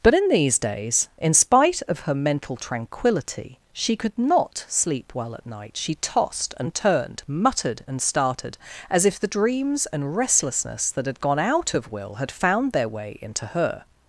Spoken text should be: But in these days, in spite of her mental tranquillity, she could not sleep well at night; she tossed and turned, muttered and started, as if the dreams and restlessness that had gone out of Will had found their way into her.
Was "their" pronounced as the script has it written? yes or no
yes